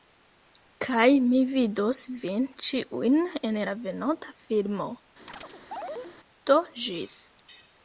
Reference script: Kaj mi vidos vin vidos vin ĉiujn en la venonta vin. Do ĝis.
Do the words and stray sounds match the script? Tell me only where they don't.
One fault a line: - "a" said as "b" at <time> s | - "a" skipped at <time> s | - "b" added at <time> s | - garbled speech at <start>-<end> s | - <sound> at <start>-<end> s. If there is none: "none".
- "vidos vin" skipped at 2.5 s
- "vin" said as "filmo" at 4.5 s
- chirp at 5.3-6.2 s